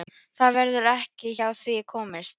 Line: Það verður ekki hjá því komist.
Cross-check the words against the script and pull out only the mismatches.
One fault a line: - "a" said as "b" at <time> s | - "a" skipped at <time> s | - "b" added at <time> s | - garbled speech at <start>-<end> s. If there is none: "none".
none